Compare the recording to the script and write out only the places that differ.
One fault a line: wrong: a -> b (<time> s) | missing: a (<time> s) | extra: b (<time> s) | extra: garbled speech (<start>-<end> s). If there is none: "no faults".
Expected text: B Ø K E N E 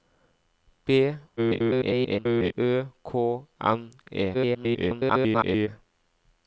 extra: garbled speech (1.4-2.5 s)
missing: E (3.1 s)
extra: garbled speech (4.3-5.7 s)